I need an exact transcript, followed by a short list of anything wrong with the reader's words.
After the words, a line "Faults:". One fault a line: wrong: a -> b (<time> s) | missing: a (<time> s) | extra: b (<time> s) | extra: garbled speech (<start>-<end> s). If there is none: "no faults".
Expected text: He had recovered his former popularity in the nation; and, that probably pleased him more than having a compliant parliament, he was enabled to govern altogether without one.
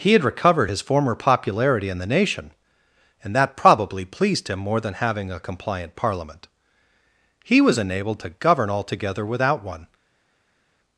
He had recovered his former popularity in the nation; and, that probably pleased him more than having a compliant parliament, he was enabled to govern altogether without one.
Faults:
no faults